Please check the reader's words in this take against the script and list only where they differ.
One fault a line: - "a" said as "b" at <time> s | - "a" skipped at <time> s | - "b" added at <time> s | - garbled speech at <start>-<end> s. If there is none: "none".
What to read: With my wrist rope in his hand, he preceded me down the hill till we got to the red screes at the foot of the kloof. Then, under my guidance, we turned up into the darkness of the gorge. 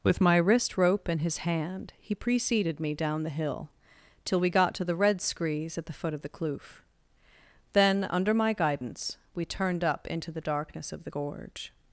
none